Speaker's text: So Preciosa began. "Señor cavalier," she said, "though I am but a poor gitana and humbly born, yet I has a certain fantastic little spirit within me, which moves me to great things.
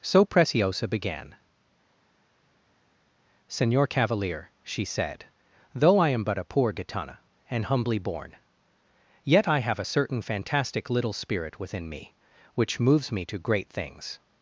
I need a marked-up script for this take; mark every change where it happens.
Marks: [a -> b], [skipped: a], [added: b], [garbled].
So Preciosa began. "Señor cavalier," she said, "though I am but a poor gitana and humbly born, yet I [has -> have] a certain fantastic little spirit within me, which moves me to great things.